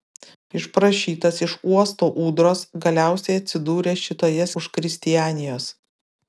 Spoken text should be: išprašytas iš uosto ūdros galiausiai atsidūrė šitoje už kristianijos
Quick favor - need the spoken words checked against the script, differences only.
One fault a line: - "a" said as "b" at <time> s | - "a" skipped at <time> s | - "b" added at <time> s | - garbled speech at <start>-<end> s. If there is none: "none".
none